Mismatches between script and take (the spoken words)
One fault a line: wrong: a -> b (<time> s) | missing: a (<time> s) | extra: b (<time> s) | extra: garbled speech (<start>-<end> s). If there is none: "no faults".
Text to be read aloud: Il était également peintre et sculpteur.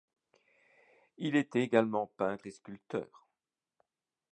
no faults